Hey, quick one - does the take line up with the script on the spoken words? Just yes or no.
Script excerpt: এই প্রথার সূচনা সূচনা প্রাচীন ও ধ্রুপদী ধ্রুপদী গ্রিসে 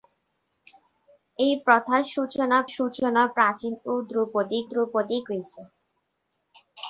yes